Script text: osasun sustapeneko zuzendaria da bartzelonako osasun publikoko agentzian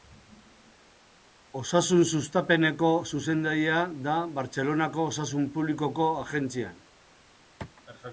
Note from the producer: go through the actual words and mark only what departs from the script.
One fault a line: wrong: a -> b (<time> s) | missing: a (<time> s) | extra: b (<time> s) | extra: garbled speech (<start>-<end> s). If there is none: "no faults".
no faults